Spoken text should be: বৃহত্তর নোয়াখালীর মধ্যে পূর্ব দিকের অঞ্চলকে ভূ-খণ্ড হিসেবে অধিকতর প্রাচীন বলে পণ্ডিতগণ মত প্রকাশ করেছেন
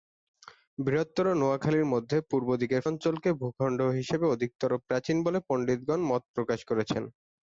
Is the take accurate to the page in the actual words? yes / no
yes